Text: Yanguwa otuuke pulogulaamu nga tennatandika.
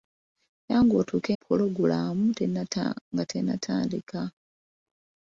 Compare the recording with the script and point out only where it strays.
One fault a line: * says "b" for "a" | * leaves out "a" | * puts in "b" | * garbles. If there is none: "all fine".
all fine